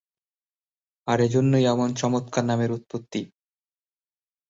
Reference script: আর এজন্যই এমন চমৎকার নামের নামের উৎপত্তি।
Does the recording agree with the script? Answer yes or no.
no